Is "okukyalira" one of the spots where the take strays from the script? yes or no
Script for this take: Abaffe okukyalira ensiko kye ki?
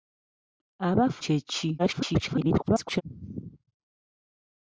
yes